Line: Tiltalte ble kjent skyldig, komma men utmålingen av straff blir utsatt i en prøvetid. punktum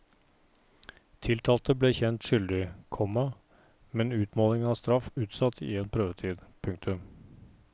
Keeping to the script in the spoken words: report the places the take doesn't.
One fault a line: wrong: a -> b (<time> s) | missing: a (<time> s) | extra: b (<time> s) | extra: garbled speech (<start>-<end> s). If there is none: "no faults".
missing: blir (5.1 s)